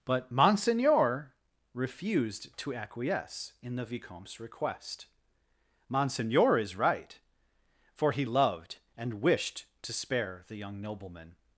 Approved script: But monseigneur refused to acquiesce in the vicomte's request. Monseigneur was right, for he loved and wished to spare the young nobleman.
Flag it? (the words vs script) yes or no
yes